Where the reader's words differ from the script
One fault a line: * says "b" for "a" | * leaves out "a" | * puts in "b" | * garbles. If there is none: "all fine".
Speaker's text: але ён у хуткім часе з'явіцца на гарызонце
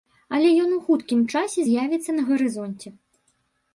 all fine